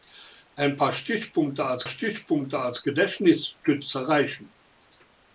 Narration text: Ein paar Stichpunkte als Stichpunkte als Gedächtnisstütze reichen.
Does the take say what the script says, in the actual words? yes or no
yes